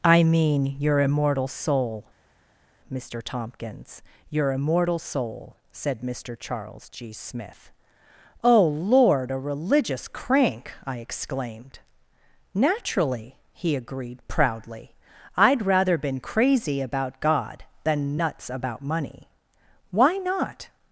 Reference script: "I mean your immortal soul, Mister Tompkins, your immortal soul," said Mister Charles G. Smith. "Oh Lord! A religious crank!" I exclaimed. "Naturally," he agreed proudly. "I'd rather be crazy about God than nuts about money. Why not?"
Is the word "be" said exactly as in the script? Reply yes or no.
no